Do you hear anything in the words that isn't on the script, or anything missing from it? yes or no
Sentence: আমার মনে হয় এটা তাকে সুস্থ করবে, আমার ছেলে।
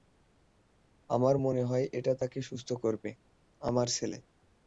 no